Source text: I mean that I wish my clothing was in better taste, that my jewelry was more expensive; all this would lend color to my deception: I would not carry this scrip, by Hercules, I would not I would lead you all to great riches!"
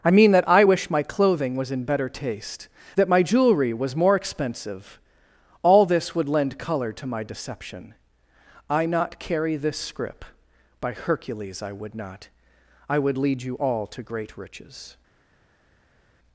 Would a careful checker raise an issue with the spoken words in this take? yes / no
yes